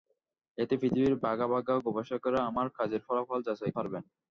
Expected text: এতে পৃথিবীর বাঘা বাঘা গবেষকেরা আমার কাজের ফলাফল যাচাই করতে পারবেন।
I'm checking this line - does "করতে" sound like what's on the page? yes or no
no